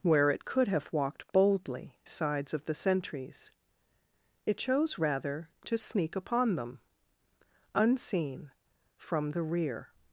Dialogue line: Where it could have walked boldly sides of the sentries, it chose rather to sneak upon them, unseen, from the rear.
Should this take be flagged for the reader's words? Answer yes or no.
no